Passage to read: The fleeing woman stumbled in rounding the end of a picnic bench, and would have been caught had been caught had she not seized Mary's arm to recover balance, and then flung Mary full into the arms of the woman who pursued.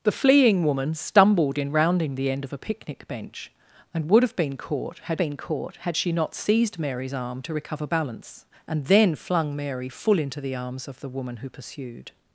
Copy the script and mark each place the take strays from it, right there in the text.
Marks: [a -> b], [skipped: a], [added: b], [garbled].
The fleeing woman stumbled in rounding the end of a picnic bench, and would have been caught had been caught had she not seized Mary's arm to recover balance, and then flung Mary full into the arms of the woman who pursued.